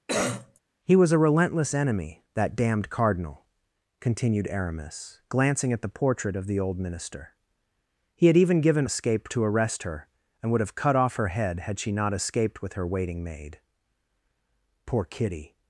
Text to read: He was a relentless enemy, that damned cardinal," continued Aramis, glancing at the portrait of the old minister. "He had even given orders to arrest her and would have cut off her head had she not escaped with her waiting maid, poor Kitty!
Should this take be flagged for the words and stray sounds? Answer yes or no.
yes